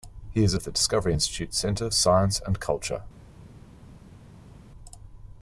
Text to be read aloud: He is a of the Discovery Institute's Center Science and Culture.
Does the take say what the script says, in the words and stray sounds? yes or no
yes